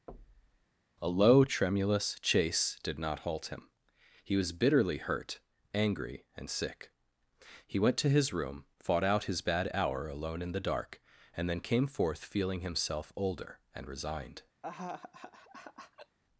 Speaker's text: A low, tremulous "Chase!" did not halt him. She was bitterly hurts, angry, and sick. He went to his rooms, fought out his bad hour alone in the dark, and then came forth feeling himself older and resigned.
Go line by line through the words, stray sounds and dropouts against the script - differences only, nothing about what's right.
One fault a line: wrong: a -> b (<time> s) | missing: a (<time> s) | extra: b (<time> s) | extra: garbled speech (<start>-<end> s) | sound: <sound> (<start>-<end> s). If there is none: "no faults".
sound: thud (0.1-0.7 s)
wrong: She -> He (4.2 s)
wrong: hurts -> hurt (5.0 s)
wrong: rooms -> room (8.3 s)
sound: laugh (14.6-16.2 s)